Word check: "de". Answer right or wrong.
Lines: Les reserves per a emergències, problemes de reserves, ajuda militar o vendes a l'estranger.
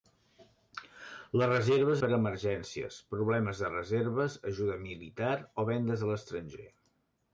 right